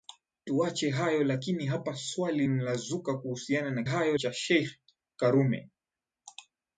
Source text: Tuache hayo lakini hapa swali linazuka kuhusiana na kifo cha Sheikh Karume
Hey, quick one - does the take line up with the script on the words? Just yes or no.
no